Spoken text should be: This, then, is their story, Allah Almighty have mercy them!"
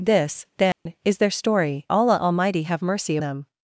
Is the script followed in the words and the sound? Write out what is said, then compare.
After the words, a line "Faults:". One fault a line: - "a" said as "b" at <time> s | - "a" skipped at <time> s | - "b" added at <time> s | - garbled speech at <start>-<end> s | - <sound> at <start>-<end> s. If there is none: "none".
This, then, is their story, Allah Almighty have mercy them!"
Faults:
- dropout at 0.7-0.9 s